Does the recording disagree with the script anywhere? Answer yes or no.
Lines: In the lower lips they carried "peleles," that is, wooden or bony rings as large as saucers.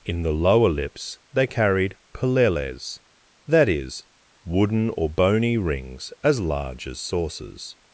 no